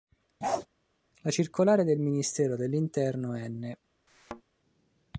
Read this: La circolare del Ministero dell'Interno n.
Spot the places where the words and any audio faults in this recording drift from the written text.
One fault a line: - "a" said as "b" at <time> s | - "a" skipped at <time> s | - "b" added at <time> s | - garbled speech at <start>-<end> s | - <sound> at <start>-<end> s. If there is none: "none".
- bark at 0.4-0.7 s
- thud at 4.1-4.4 s